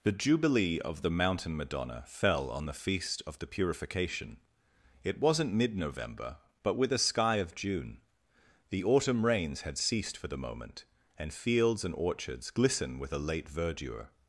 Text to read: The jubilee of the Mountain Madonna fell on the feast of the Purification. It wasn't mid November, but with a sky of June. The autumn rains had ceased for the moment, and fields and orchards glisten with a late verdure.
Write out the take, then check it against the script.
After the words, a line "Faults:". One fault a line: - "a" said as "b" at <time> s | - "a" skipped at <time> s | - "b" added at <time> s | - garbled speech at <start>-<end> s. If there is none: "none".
The jubilee of the Mountain Madonna fell on the feast of the Purification. It wasn't mid November, but with a sky of June. The autumn rains had ceased for the moment, and fields and orchards glisten with a late verdure.
Faults:
none